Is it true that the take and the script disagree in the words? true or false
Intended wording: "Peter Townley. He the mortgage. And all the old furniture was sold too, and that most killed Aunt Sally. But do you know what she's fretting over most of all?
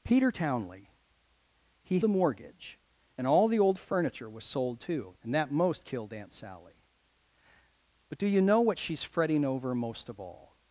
false